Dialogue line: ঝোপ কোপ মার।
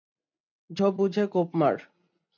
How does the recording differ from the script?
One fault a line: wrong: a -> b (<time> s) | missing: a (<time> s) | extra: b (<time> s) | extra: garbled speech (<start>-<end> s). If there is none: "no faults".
extra: বুঝে (1.0 s)